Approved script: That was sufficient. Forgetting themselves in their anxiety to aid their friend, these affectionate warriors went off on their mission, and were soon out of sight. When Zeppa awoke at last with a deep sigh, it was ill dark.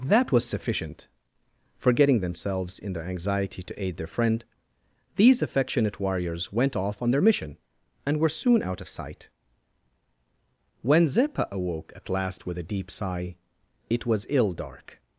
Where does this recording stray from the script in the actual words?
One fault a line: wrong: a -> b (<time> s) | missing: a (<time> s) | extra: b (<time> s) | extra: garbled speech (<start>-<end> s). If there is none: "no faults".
no faults